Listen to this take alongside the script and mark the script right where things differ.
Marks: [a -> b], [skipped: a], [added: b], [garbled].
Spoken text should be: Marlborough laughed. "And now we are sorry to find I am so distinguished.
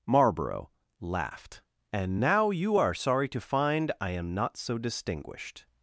Marlborough laughed. "And now [we -> you] are sorry to find I am [added: not] so distinguished.